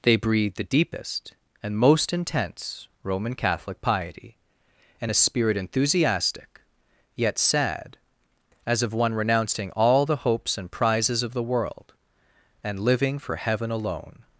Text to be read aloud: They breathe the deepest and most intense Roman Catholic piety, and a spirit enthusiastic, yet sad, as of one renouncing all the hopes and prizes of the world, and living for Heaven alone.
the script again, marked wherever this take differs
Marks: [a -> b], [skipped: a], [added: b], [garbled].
They breathe the deepest and most intense Roman Catholic piety, and a spirit enthusiastic, yet sad, as of one renouncing all the hopes and prizes of the world, and living for Heaven alone.